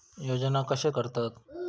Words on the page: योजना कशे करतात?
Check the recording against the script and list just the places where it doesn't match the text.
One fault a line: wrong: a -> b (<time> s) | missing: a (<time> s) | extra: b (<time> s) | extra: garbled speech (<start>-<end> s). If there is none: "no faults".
no faults